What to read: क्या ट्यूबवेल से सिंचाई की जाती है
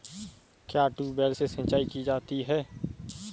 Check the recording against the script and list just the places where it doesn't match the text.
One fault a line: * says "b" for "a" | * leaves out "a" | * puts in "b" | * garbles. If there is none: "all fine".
all fine